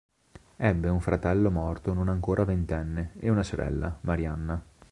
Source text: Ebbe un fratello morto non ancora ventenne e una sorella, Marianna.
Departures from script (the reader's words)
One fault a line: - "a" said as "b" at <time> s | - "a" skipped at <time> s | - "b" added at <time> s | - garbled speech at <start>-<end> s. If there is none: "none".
none